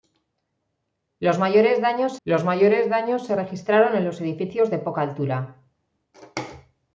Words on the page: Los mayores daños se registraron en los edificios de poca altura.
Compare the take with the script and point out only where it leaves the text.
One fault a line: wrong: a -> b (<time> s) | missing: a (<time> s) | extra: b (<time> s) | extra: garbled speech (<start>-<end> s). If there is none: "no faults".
extra: los mayores daños (2.2 s)